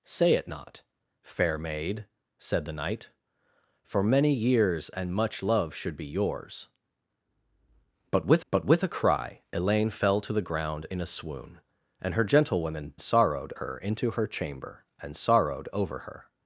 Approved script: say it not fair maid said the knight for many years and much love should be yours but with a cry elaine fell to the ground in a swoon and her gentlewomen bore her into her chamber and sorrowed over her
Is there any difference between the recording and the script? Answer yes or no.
yes